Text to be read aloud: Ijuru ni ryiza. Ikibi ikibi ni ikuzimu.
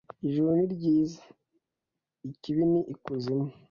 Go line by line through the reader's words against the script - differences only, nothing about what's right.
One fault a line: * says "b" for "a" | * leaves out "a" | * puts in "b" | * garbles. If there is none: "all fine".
* leaves out "ikibi"